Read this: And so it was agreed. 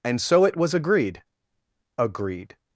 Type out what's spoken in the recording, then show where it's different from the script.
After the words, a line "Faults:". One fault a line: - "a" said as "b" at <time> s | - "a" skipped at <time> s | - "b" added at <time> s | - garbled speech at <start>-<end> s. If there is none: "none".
And so it was agreed agreed.
Faults:
- "agreed" added at 1.9 s